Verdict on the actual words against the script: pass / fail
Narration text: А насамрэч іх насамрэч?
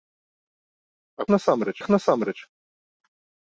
pass